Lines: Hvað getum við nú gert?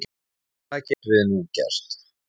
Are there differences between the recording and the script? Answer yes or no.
no